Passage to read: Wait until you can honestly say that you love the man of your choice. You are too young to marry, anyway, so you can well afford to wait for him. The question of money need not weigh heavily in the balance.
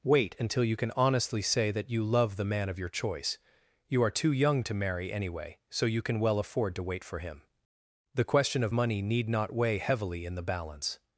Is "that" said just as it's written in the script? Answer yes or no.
yes